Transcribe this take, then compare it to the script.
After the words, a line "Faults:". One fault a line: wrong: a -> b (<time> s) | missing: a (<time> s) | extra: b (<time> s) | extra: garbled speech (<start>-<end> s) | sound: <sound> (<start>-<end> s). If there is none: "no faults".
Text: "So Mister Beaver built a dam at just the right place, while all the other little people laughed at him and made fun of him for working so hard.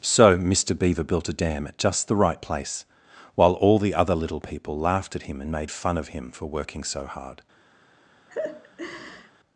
"So Mister Beaver built a dam at just the right place, while all the other little people laughed at him and made fun of him for working so hard.
Faults:
sound: laugh (8.3-9.3 s)